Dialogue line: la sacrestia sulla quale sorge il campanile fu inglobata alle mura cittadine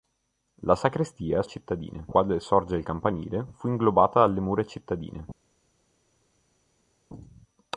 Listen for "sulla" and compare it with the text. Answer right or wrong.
wrong